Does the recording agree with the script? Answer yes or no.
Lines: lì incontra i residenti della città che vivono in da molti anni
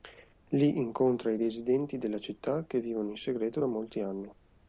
no